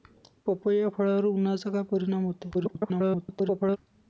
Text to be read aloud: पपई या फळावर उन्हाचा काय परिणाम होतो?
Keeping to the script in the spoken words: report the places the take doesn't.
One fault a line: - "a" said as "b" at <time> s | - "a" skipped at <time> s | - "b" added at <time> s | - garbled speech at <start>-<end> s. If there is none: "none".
- garbled speech at 2.5-3.8 s